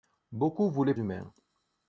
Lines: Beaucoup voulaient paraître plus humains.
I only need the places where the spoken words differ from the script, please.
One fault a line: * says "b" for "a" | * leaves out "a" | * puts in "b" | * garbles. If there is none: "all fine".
* leaves out "paraître plus"